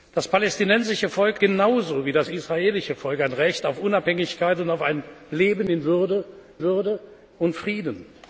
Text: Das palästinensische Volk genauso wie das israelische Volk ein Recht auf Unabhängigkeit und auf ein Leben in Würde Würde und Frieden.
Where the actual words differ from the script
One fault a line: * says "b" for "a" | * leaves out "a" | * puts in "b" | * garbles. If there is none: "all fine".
all fine